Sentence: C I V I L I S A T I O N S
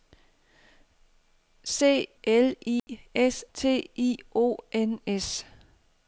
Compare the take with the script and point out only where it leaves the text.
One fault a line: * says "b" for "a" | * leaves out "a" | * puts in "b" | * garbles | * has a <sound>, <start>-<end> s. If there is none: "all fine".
* leaves out "I V I"
* has a dropout, 2.8-2.9 s
* leaves out "A"